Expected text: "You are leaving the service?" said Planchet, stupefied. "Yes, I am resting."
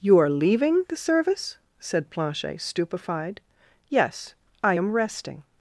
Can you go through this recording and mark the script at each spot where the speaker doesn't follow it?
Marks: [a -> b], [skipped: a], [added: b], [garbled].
"You are leaving the service?" said Planchet, stupefied. "Yes, I am resting."